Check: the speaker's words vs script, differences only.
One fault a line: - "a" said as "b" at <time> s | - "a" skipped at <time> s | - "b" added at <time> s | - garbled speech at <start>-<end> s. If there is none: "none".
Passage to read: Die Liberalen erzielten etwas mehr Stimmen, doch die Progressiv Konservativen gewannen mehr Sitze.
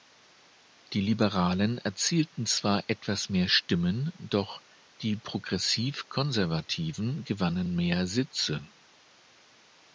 - "zwar" added at 2.5 s